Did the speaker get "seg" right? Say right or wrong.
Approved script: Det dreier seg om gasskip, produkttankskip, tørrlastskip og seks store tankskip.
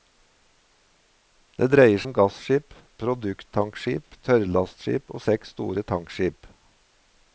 wrong